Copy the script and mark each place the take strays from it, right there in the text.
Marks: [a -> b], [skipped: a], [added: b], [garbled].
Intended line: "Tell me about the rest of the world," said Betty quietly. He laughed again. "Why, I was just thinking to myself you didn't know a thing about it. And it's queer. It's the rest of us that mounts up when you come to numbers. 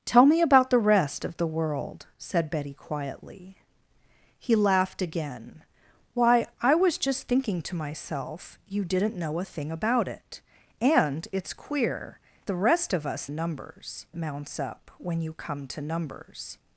"Tell me about the rest of the world," said Betty quietly. He laughed again. "Why, I was just thinking to myself you didn't know a thing about it. And it's queer. [skipped: It's] the rest of us [that -> numbers] mounts up when you come to numbers.